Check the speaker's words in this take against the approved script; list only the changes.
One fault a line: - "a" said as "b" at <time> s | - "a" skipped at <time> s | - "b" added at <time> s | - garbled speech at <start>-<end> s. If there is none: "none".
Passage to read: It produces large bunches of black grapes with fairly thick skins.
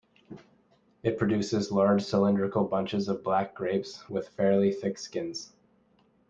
- "cylindrical" added at 2.0 s